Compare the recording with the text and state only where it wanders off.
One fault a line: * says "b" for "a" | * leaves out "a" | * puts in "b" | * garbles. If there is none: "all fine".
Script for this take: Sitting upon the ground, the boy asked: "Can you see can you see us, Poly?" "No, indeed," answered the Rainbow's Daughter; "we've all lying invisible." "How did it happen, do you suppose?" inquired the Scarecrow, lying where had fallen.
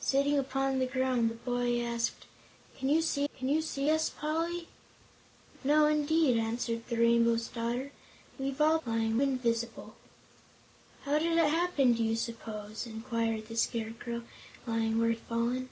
all fine